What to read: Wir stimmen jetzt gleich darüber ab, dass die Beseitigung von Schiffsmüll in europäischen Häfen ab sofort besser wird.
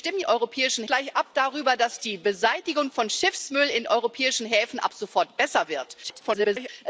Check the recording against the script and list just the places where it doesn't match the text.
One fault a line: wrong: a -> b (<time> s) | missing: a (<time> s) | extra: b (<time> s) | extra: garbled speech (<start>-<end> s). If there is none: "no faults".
wrong: jetzt -> europäischen (0.2 s)
extra: garbled speech (6.0-6.7 s)